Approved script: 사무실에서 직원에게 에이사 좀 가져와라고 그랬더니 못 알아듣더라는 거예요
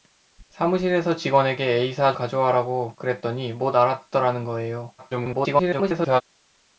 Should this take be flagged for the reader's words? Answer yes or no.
yes